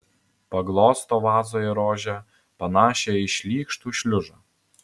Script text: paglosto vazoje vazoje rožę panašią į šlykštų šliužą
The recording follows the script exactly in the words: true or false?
false